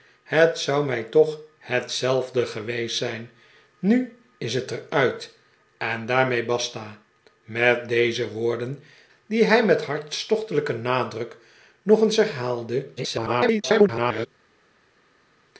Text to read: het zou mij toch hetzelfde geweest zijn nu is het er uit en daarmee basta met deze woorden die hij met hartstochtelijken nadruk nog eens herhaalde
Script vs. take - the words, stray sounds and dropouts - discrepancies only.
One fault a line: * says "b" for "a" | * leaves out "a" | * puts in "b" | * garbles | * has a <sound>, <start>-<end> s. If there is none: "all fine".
* garbles